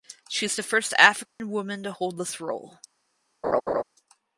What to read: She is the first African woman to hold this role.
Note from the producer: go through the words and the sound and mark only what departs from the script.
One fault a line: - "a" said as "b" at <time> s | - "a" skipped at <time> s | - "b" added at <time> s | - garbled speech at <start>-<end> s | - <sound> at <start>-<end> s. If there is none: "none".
- dropout at 1.3-1.4 s
- laugh at 3.4-3.8 s